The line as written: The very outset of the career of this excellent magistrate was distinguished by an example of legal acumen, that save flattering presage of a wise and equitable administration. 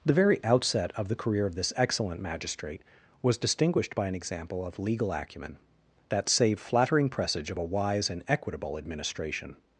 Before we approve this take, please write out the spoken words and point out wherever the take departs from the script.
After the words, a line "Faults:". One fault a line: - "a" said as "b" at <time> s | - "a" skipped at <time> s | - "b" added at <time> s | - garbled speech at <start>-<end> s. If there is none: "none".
The very outset of the career of this excellent magistrate was distinguished by an example of legal acumen, that save flattering presage of a wise and equitable administration.
Faults:
none